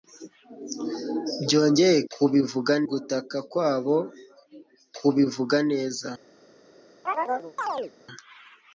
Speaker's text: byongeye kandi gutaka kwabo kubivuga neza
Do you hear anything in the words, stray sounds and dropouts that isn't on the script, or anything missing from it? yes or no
yes